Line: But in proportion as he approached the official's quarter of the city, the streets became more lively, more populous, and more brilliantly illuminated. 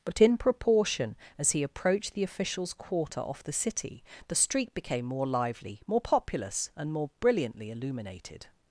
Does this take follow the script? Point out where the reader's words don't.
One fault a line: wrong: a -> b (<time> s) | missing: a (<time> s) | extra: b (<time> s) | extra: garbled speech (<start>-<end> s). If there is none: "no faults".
wrong: of -> off (3.2 s)
wrong: streets -> street (4.3 s)